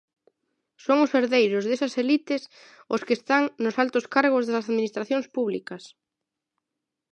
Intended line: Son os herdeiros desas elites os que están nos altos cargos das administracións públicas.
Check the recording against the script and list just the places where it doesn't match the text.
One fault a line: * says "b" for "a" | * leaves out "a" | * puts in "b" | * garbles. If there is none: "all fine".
all fine